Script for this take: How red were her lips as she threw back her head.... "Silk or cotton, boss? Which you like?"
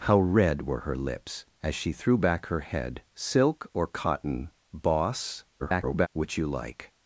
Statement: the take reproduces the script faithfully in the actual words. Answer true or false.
false